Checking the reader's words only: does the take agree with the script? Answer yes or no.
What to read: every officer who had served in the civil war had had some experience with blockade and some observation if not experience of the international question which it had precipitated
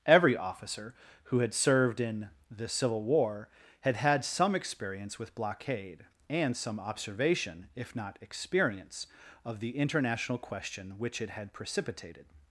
yes